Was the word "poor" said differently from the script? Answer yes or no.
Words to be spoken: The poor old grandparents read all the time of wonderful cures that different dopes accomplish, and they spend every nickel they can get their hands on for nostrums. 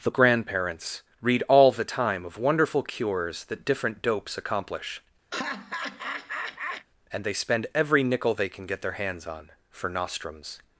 yes